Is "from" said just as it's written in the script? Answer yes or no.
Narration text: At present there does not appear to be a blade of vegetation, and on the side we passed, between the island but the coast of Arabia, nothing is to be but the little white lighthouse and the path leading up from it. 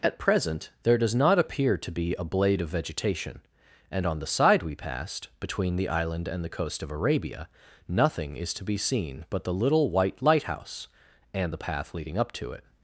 no